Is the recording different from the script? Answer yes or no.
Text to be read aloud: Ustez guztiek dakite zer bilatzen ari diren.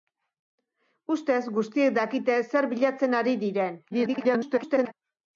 yes